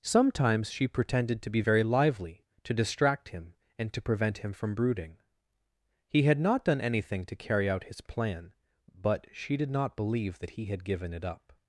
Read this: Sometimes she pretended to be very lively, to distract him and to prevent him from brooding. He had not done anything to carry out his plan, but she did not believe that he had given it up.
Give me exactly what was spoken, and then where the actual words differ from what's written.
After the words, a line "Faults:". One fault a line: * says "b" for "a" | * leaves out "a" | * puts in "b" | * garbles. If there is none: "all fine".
Sometimes she pretended to be very lively, to distract him and to prevent him from brooding. He had not done anything to carry out his plan, but she did not believe that he had given it up.
Faults:
all fine